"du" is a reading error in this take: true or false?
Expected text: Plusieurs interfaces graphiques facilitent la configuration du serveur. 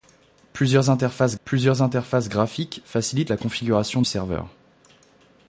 true